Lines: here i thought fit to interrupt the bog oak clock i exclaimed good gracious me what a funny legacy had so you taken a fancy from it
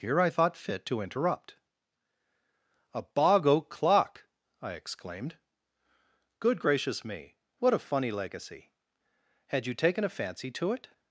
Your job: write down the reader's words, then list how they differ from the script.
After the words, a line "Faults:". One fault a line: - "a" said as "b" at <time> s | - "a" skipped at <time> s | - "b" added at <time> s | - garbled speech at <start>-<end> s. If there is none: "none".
here i thought fit to interrupt a bog oak clock i exclaimed good gracious me what a funny legacy had you taken a fancy to it
Faults:
- "the" said as "a" at 2.9 s
- "so" skipped at 9.6 s
- "from" said as "to" at 10.5 s